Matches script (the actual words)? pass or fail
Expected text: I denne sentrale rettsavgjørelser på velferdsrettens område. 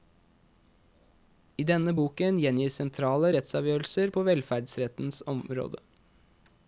fail